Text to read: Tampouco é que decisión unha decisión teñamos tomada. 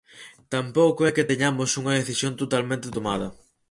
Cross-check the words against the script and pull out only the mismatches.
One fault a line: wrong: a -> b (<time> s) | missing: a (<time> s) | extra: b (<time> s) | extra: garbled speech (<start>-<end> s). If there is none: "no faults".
wrong: decisión -> teñamos (1.3 s)
wrong: teñamos -> totalmente (2.4 s)